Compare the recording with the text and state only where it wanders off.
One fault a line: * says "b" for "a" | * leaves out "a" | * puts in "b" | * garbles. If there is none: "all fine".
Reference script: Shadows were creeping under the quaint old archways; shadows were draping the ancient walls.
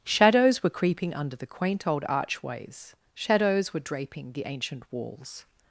all fine